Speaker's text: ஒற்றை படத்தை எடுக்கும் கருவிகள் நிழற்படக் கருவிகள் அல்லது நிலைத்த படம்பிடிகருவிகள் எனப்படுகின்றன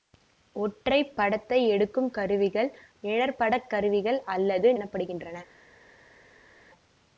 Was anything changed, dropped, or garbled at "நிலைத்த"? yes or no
yes